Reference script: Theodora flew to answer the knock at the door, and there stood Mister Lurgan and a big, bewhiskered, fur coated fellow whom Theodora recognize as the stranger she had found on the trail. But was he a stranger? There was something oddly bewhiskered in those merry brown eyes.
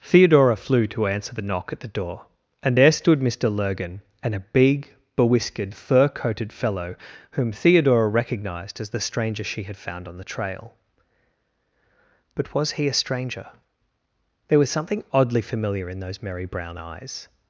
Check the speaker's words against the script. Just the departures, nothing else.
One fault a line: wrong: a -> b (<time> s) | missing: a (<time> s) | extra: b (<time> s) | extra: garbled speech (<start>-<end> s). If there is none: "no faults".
wrong: recognize -> recognized (8.1 s)
wrong: bewhiskered -> familiar (15.4 s)